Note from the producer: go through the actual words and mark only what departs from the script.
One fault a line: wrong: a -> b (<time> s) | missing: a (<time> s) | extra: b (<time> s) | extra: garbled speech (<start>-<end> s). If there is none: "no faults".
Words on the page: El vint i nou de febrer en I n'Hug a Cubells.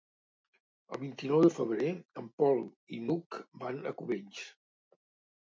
extra: Pol (2.4 s)
extra: van (3.6 s)